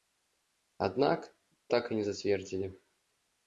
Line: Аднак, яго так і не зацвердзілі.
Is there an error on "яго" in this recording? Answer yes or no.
yes